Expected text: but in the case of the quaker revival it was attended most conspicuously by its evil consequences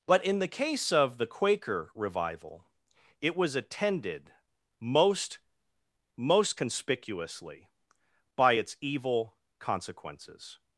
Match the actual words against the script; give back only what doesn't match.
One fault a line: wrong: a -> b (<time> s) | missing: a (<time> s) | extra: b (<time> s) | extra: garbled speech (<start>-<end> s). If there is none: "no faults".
extra: most (6.1 s)